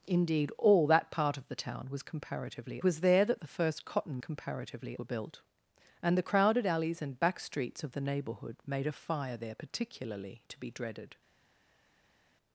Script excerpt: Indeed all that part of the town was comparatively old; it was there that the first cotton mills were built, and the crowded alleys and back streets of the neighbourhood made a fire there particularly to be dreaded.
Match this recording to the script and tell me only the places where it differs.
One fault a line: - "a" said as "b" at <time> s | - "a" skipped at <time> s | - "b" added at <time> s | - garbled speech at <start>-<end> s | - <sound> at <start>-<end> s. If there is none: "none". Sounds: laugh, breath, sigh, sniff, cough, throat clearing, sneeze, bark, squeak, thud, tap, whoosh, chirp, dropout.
- "old it" skipped at 2.8 s
- "mills" said as "comparatively" at 4.2 s